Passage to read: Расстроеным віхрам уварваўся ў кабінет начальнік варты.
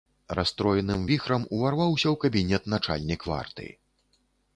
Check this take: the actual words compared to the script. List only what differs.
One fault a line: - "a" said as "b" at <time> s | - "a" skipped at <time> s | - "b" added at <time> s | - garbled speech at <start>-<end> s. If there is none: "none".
none